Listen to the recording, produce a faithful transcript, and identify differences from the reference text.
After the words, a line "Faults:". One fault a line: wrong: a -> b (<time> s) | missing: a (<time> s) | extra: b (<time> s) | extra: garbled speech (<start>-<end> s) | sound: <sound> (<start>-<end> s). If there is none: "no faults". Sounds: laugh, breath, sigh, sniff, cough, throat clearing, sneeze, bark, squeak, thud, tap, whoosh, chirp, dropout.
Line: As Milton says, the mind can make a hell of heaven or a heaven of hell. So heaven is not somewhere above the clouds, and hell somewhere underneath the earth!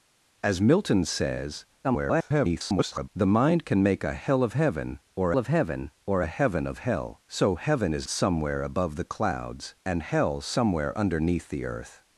As Milton says, [garbled] the mind can make a hell of heaven or of heaven or a heaven of hell. So heaven is somewhere above the clouds, and hell somewhere underneath the earth!
Faults:
extra: garbled speech (1.8-3.1 s)
extra: of heaven or (5.4 s)
missing: not (8.1 s)